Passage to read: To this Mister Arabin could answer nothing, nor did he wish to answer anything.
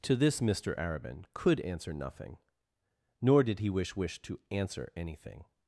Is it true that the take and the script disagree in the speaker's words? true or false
true